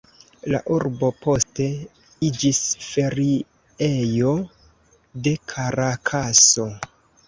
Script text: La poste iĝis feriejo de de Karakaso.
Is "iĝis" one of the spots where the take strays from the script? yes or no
no